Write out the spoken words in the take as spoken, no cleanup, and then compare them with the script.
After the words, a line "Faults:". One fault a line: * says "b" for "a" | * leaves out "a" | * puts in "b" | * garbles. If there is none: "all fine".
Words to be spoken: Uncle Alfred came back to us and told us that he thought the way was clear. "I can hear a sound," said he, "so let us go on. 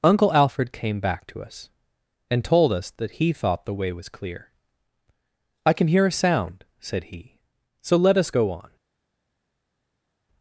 Uncle Alfred came back to us and told us that he thought the way was clear. "I can hear a sound," said he, "so let us go on.
Faults:
all fine